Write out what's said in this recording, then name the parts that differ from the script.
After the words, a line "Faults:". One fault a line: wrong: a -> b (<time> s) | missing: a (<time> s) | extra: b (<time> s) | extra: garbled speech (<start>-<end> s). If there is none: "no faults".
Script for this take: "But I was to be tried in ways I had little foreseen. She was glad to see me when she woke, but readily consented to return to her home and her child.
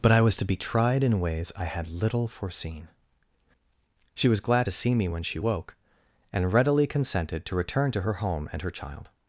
"But I was to be tried in ways I had little foreseen. She was glad to see me when she woke, and readily consented to return to her home and her child.
Faults:
wrong: but -> and (6.3 s)